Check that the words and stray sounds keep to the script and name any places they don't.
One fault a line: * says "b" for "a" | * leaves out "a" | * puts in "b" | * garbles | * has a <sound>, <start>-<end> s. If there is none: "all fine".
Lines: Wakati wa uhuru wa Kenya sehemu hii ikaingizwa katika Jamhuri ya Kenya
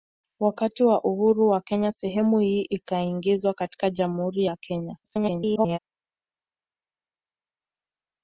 * garbles